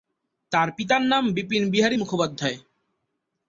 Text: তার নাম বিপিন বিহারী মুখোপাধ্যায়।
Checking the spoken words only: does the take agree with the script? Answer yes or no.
no